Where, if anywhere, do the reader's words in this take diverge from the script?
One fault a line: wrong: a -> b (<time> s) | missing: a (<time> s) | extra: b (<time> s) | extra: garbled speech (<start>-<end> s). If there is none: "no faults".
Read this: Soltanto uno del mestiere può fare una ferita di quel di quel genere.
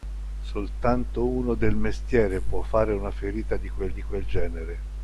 no faults